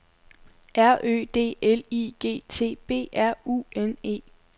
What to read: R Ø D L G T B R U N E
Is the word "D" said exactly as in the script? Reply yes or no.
yes